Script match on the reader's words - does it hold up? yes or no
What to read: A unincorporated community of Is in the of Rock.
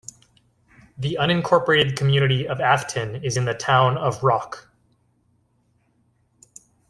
no